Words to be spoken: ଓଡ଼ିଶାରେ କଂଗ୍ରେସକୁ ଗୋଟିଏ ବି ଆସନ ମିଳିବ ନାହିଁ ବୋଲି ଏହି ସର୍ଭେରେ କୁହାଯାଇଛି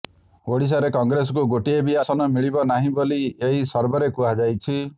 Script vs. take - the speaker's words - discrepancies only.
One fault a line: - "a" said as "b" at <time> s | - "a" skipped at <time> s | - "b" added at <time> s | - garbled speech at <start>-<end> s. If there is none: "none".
none